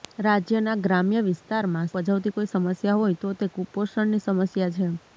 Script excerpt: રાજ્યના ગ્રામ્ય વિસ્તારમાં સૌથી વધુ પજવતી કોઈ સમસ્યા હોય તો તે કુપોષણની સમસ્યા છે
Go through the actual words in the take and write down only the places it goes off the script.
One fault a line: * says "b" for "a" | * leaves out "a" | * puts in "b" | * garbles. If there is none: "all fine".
* leaves out "સૌથી વધુ"